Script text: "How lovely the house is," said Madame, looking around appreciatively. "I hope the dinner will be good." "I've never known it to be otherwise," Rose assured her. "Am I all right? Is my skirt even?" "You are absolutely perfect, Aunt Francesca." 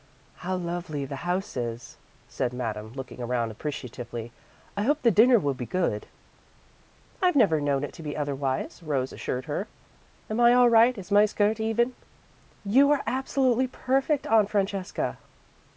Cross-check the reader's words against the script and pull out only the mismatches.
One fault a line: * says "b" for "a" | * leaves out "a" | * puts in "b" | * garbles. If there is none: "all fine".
all fine